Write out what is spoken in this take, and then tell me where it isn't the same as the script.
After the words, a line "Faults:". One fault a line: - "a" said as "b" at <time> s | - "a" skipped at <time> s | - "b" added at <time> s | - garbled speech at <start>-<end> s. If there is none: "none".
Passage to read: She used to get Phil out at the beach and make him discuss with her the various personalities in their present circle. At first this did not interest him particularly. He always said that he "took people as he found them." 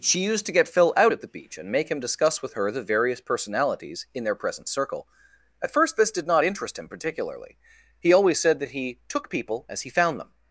She used to get Phil out at the beach and make him discuss with her the various personalities in their present circle. At first this did not interest him particularly. He always said that he "took people as he found them."
Faults:
none